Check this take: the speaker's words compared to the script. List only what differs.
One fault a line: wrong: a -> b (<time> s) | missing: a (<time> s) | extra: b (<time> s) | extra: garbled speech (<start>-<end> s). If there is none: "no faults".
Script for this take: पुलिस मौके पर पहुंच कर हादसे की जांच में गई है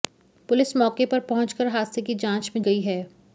no faults